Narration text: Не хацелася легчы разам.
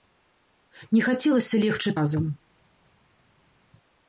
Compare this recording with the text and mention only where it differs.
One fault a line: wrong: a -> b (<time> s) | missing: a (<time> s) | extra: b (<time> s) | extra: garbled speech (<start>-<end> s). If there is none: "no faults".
no faults